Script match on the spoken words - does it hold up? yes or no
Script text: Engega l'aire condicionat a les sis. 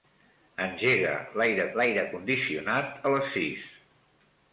no